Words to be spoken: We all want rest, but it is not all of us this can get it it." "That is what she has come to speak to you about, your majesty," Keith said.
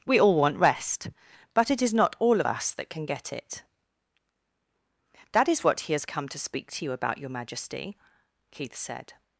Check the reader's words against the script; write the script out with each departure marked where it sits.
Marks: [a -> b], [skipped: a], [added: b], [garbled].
We all want rest, but it is not all of us [this -> that] can get it [skipped: it."] "That is what [she -> he] has come to speak to you about, your majesty," Keith said.